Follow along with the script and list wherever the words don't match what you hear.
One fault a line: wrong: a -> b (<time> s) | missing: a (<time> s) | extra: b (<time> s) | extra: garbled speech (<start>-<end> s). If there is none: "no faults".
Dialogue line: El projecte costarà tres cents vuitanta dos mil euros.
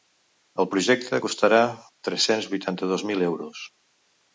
no faults